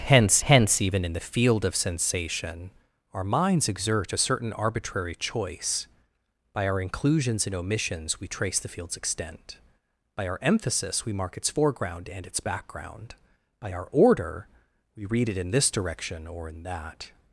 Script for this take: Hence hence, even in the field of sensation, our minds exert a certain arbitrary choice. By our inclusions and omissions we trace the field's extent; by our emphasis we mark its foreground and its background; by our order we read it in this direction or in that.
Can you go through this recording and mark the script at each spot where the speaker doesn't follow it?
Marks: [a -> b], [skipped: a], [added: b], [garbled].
Hence hence, even in the field of sensation, our minds exert a certain arbitrary choice. By our inclusions and omissions we trace the field's extent; by our emphasis we mark its foreground and its background; by our order we read it in this direction or in that.